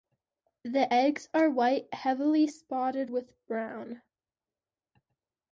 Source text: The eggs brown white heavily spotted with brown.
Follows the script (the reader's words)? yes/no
no